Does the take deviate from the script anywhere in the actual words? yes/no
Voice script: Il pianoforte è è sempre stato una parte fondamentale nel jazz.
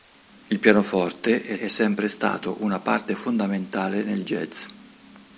no